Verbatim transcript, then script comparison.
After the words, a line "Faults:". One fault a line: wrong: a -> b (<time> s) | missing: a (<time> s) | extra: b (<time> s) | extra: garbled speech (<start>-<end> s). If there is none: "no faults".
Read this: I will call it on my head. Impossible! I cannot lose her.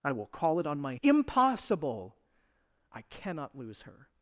I will call it on my. Impossible! I cannot lose her.
Faults:
missing: head (0.9 s)